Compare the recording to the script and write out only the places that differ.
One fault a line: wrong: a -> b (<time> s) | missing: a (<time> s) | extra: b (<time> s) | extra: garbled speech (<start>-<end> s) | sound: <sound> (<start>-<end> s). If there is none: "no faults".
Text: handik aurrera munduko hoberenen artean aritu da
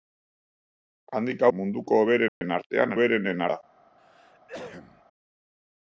missing: aurrera (1.4 s)
sound: dropout (2.3-2.4 s)
wrong: aritu -> hoberenen (3.0 s)
sound: cough (4.0-5.0 s)